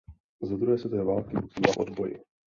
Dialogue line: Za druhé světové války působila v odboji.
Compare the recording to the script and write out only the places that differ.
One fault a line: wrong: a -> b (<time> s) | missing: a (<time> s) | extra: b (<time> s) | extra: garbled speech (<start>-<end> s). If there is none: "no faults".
no faults